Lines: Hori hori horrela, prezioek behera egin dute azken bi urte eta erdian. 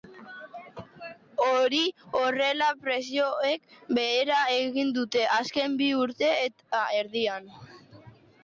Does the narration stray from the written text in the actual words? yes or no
yes